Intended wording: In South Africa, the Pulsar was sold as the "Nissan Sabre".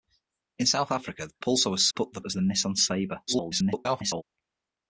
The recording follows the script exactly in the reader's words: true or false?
false